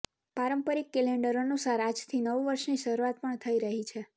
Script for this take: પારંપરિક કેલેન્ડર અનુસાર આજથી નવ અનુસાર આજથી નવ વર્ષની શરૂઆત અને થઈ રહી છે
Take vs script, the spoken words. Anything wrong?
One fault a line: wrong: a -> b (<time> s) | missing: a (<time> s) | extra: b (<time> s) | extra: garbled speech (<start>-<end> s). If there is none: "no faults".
missing: અનુસાર આજથી નવ (2.4 s)
wrong: અને -> પણ (3.2 s)